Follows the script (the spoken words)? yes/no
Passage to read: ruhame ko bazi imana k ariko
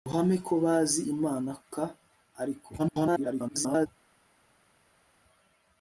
no